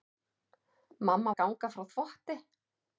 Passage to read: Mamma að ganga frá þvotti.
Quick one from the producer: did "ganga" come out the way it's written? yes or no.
yes